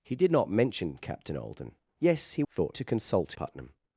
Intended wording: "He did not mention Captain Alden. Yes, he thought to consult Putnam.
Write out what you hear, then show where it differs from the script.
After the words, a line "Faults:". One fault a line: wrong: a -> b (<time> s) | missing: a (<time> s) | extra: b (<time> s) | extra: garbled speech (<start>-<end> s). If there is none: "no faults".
"He did not mention Captain Alden. Yes, he thought to consult Putnam.
Faults:
no faults